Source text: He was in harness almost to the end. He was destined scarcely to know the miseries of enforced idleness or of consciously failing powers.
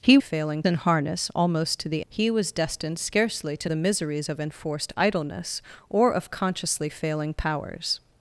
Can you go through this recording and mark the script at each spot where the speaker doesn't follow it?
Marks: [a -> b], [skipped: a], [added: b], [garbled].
He [was -> failing] in harness almost to the [skipped: end.] He was destined scarcely to [skipped: know] the miseries of enforced idleness or of consciously failing powers.